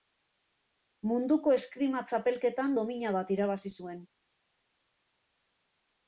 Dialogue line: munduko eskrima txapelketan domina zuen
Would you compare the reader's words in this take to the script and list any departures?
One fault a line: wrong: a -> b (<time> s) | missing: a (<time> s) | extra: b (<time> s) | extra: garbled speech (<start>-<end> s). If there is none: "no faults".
extra: bat irabazi (3.2 s)